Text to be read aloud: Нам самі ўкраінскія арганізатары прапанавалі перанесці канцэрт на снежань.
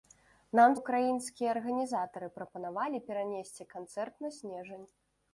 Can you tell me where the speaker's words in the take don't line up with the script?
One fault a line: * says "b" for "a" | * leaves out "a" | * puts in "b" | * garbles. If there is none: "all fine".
* leaves out "самі"